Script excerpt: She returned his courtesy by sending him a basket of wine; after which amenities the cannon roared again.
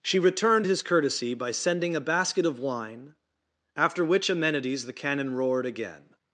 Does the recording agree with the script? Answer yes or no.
no